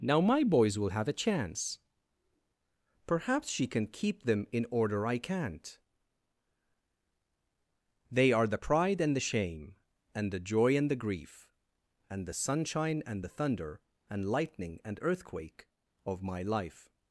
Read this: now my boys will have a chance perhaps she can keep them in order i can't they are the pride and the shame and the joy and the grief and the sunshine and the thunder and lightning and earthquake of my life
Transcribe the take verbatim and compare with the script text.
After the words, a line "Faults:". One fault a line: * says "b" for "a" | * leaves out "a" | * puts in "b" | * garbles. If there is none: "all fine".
now my boys will have a chance perhaps she can keep them in order i can't they are the pride and the shame and the joy and the grief and the sunshine and the thunder and lightning and earthquake of my life
Faults:
all fine